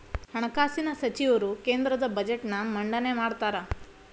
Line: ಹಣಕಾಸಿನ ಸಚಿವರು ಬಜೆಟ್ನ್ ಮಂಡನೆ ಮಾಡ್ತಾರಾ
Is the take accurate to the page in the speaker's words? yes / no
no